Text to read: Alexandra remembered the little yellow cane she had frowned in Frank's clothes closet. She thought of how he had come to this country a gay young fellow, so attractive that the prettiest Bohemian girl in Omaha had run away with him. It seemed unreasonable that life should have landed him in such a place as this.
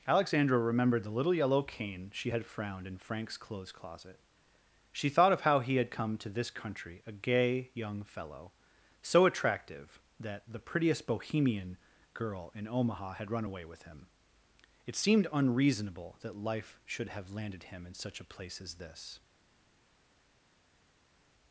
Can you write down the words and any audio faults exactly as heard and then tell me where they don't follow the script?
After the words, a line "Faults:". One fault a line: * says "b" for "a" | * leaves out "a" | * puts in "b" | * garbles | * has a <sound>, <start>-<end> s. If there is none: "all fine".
Alexandra remembered the little yellow cane she had frowned in Frank's clothes closet. She thought of how he had come to this country a gay young fellow, so attractive that the prettiest Bohemian girl in Omaha had run away with him. It seemed unreasonable that life should have landed him in such a place as this.
Faults:
all fine